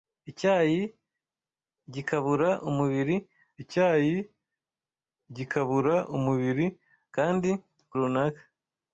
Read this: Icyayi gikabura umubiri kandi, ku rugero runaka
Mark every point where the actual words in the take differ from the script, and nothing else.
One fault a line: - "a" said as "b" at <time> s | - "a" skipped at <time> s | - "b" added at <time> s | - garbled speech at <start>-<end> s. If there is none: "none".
- "icyayi gikabura umubiri" added at 3.6 s
- "rugero" skipped at 7.9 s